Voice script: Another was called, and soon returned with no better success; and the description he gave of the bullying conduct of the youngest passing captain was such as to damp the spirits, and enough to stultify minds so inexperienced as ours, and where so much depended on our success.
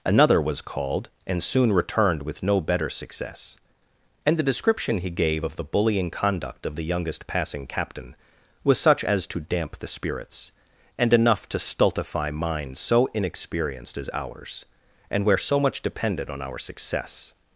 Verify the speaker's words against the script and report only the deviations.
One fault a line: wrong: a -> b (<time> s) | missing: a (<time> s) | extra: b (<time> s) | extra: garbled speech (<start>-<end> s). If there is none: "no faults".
no faults